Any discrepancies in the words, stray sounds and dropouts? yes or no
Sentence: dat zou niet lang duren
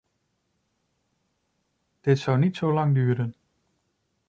yes